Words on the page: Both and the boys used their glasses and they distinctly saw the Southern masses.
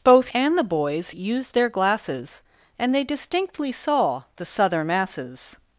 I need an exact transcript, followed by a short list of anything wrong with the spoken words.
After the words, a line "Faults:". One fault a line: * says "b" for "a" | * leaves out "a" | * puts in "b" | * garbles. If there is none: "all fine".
Both and the boys used their glasses and they distinctly saw the Southern masses.
Faults:
all fine